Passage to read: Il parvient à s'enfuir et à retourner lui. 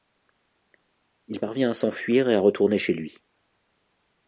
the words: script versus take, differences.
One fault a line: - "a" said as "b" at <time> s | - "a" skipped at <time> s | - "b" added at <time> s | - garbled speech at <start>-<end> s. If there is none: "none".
- "chez" added at 2.8 s